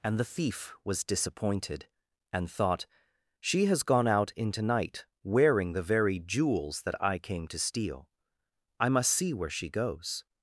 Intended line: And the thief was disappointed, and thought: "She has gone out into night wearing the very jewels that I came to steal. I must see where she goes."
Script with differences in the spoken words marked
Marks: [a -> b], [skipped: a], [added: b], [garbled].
And the thief was disappointed, and thought: "She has gone out into night wearing the very jewels that I came to steal. I must see where she goes."